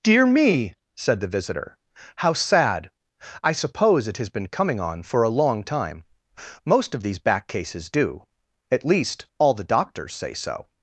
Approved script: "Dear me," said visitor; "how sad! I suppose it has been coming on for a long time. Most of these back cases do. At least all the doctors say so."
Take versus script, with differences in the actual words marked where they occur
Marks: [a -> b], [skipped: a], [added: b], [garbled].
"Dear me," said [added: the] visitor; "how sad! I suppose it has been coming on for a long time. Most of these back cases do. At least all the doctors say so."